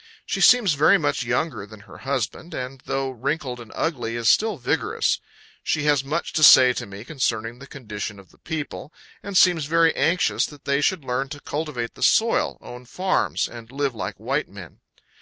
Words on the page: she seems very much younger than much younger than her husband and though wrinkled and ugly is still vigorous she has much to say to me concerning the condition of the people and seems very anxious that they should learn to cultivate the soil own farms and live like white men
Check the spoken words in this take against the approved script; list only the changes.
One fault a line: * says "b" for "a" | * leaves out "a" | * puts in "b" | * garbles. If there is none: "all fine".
* leaves out "much younger than"